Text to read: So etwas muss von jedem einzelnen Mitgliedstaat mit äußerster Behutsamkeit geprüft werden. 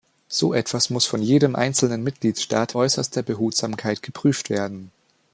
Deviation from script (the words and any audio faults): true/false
true